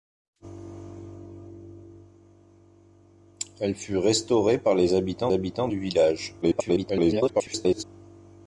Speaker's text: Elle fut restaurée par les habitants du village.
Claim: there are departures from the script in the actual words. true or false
true